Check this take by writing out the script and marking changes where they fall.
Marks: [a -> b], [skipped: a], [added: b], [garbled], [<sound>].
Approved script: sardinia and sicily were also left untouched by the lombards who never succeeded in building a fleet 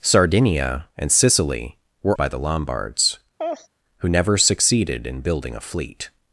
sardinia and sicily were [skipped: also left untouched] by the lombards [laugh] who never succeeded in building a fleet